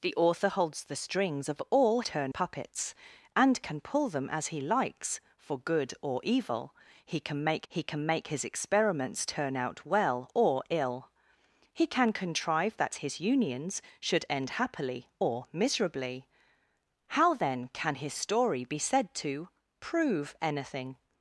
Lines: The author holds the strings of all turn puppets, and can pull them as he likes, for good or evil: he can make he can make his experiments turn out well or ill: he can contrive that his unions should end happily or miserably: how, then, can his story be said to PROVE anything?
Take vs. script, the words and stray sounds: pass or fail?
pass